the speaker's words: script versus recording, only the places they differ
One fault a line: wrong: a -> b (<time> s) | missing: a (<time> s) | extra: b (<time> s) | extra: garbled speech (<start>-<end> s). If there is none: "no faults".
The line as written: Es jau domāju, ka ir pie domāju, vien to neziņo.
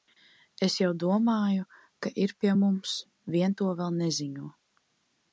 wrong: domāju -> mums (2.6 s)
extra: vēl (3.8 s)